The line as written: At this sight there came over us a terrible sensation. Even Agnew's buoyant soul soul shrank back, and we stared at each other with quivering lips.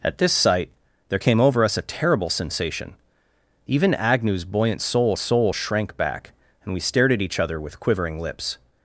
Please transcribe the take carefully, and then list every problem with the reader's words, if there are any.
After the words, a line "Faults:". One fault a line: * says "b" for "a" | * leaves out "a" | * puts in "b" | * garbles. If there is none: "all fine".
At this sight there came over us a terrible sensation. Even Agnew's buoyant soul soul shrank back, and we stared at each other with quivering lips.
Faults:
all fine